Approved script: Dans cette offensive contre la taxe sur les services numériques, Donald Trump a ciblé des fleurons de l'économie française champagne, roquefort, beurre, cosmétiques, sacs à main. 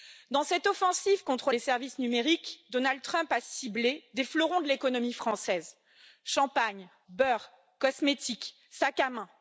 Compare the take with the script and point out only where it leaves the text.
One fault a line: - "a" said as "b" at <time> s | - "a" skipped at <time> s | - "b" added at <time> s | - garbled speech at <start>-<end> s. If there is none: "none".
- "la taxe sur" skipped at 1.5 s
- "roquefort" skipped at 6.9 s